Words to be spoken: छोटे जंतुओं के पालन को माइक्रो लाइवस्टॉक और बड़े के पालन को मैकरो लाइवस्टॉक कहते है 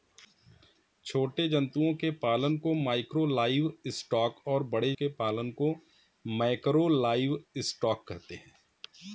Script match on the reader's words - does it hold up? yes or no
yes